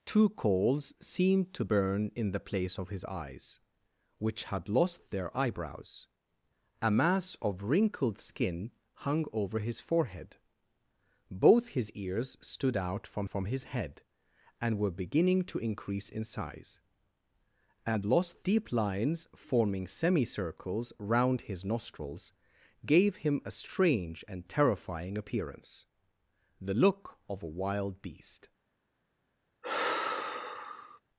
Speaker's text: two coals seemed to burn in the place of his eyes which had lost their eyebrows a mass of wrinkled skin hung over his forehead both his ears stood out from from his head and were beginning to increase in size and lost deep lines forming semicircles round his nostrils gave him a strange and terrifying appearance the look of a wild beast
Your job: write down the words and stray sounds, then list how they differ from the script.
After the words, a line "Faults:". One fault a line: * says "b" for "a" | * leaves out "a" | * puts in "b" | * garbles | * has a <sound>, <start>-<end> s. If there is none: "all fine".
two coals seemed to burn in the place of his eyes which had lost their eyebrows a mass of wrinkled skin hung over his forehead both his ears stood out from from his head and were beginning to increase in size and lost deep lines forming semicircles round his nostrils gave him a strange and terrifying appearance the look of a wild beast
Faults:
* has a sigh, 29.6-31.0 s